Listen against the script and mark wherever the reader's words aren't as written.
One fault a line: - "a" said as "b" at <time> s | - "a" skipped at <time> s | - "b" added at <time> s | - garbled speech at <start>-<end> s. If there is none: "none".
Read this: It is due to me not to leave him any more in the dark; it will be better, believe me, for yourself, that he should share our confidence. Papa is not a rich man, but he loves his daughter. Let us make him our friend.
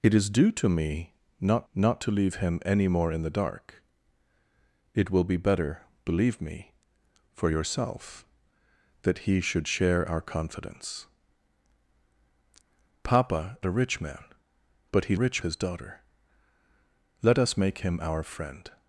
- "not" added at 1.7 s
- "is not" skipped at 13.6 s
- "loves" said as "rich" at 15.1 s